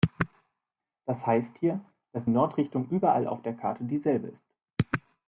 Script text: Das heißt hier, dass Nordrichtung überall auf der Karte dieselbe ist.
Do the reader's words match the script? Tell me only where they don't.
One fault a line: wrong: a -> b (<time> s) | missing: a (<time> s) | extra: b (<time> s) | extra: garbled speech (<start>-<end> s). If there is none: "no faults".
no faults